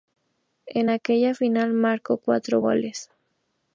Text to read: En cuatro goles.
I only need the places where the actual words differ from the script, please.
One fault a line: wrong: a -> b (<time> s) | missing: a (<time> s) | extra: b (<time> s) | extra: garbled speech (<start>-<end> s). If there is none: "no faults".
extra: aquella final marcó (0.9 s)